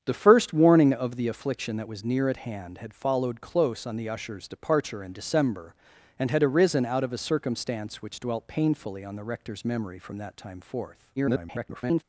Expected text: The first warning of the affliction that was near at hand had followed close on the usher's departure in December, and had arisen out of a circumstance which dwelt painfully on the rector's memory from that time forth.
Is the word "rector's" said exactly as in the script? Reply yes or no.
yes